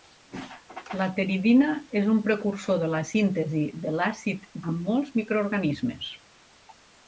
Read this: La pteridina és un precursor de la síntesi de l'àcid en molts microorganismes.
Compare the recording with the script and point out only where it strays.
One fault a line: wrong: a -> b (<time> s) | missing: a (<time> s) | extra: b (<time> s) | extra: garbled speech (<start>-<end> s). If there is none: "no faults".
no faults